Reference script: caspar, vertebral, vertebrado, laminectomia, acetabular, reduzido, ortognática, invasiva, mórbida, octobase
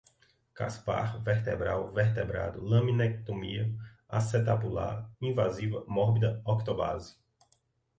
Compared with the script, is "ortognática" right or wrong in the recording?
wrong